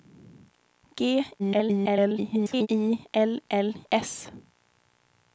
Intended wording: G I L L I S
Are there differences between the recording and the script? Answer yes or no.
yes